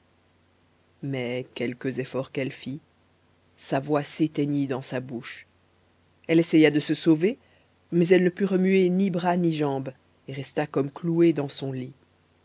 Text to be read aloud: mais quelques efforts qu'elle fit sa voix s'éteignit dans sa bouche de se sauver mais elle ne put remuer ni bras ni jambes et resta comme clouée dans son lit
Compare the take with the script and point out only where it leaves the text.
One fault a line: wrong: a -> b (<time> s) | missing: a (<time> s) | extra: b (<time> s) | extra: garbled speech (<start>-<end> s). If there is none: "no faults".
extra: elle essaya (6.3 s)